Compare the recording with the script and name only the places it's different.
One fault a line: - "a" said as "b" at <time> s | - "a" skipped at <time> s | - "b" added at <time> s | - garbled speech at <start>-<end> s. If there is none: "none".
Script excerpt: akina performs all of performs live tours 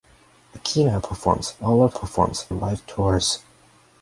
none